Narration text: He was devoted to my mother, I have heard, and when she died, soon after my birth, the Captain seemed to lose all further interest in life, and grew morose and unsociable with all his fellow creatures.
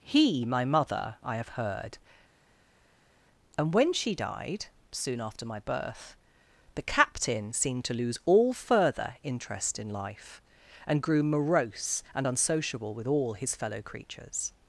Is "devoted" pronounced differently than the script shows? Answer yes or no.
yes